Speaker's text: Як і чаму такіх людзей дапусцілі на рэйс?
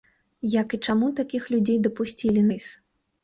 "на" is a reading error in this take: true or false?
true